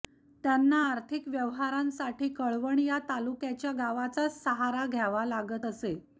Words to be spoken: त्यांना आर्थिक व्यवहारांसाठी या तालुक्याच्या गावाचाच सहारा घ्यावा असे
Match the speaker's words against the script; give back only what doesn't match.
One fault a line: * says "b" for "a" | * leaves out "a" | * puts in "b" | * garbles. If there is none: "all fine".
* puts in "कळवण"
* puts in "लागत"